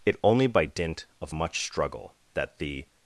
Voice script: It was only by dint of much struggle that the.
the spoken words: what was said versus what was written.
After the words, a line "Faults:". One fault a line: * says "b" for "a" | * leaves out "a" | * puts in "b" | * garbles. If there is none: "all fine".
It only by dint of much struggle that the.
Faults:
* leaves out "was"